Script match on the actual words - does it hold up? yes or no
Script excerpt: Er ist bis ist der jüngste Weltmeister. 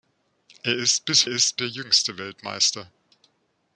yes